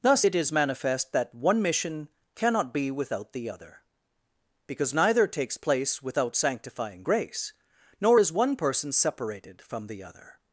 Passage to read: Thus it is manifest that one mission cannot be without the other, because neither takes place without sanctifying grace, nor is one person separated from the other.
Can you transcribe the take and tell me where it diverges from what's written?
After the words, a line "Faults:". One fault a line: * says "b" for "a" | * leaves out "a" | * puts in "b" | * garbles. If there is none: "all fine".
Thus it is manifest that one mission cannot be without the other, because neither takes place without sanctifying grace, nor is one person separated from the other.
Faults:
all fine